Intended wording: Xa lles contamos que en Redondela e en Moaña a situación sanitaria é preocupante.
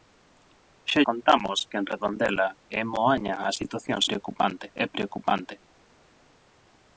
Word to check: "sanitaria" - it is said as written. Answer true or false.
false